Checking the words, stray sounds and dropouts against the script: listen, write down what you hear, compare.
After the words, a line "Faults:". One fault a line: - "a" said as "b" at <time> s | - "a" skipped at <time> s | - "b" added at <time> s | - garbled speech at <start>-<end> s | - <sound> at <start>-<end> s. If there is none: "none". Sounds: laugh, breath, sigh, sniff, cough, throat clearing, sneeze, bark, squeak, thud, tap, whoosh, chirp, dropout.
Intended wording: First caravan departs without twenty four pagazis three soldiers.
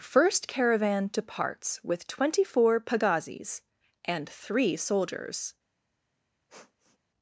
First caravan departs with twenty four pagazis and three soldiers.
Faults:
- "without" said as "with" at 1.8 s
- "and" added at 4.0 s
- sniff at 6.5-7.0 s